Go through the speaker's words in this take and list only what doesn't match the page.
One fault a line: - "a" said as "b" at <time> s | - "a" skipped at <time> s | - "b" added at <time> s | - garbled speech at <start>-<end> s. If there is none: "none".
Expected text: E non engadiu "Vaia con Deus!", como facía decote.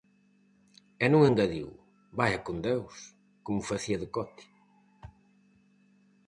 none